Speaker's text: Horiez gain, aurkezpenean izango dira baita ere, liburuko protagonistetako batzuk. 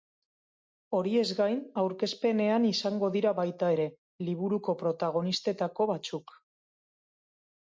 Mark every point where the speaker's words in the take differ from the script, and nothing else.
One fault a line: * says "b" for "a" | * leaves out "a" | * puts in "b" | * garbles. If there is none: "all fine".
all fine